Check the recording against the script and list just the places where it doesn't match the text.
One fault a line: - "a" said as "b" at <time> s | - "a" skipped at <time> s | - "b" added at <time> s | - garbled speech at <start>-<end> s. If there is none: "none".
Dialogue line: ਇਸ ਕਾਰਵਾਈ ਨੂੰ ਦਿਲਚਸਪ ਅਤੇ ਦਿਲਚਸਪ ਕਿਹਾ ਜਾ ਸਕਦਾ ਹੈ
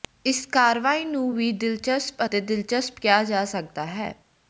- "ਵੀ" added at 1.3 s